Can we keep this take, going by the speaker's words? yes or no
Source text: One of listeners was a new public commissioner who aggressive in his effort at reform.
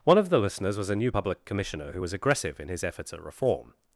no